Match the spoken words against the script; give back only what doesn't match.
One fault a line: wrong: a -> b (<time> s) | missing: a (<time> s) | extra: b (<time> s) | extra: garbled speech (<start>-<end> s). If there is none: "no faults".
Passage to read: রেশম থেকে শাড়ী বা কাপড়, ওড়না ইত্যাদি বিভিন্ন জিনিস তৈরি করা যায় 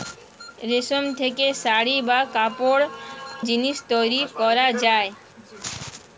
missing: ওড়না ইত্যাদি বিভিন্ন (2.8 s)